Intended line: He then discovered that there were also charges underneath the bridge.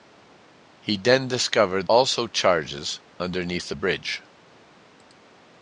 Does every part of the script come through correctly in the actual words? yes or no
no